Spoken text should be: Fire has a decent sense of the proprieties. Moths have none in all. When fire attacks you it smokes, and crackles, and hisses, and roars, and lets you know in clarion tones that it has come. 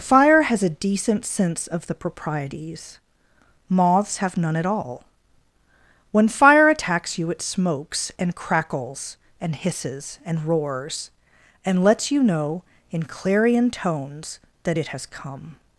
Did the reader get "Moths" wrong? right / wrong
right